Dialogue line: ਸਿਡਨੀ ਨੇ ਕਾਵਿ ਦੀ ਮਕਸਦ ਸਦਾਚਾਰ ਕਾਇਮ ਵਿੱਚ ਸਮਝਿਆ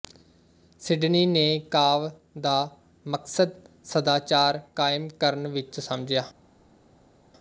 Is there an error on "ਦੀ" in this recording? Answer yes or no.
yes